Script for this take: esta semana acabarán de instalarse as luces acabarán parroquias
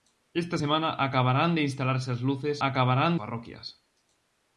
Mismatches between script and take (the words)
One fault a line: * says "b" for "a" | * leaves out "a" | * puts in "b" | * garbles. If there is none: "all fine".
all fine